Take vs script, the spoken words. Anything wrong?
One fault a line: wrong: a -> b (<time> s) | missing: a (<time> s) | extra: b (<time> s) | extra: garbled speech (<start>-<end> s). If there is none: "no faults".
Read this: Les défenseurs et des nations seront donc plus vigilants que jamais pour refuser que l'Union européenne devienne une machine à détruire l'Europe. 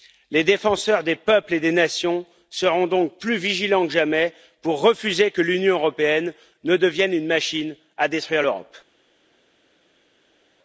extra: des peuples (1.0 s)
extra: ne (6.6 s)